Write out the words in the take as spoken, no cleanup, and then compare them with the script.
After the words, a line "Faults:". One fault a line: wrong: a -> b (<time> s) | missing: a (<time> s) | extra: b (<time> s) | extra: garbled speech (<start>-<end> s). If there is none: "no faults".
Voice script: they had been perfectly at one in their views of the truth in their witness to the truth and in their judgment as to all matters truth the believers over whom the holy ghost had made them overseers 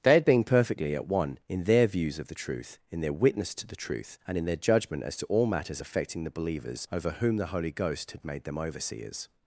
they had been perfectly at one in their views of the truth in their witness to the truth and in their judgment as to all matters affecting the believers over whom the holy ghost had made them overseers
Faults:
wrong: truth -> affecting (5.8 s)